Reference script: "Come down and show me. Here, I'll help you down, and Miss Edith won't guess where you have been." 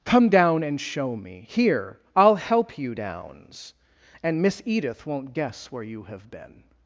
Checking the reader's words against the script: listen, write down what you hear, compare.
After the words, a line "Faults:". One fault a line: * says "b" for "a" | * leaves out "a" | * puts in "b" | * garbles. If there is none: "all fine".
"Come down and show me. Here, I'll help you downs, and Miss Edith won't guess where you have been."
Faults:
* says "downs" for "down"